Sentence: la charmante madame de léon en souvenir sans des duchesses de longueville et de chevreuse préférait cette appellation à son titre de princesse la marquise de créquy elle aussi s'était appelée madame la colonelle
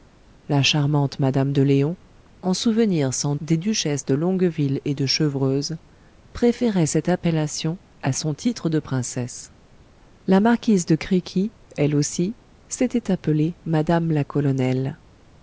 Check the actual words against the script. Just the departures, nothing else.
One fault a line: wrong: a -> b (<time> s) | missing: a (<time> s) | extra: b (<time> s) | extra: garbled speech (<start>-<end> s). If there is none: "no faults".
no faults